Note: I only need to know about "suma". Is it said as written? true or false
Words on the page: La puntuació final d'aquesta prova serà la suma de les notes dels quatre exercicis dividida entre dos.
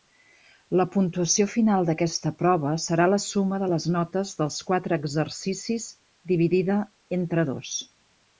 true